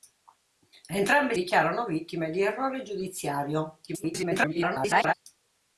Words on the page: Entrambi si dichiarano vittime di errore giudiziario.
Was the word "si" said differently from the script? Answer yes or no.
yes